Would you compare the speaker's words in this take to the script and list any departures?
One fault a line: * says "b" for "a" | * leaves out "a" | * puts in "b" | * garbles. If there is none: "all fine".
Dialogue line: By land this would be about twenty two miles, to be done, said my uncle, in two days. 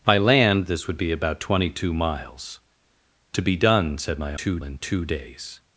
* says "two" for "uncle"